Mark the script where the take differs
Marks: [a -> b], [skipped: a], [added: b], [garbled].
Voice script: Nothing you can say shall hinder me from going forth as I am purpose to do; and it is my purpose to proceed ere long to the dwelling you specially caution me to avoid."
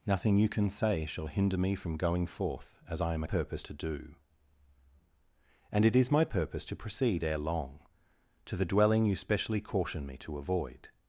Nothing you can say shall hinder me from going forth as I am purpose to do; and it is my purpose to proceed ere long to the dwelling you specially caution me to avoid."